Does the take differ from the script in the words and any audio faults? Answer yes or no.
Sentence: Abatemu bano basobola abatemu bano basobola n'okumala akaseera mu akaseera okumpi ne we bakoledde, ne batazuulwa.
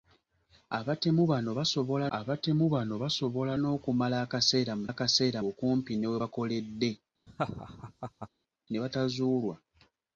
yes